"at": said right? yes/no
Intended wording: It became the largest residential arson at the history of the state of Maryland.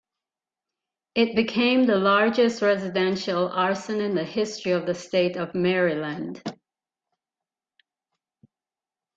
no